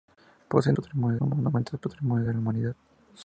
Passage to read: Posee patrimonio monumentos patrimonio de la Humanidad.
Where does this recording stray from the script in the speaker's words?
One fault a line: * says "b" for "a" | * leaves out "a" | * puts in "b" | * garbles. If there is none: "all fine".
all fine